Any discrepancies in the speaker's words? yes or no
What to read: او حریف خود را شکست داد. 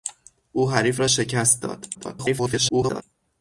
yes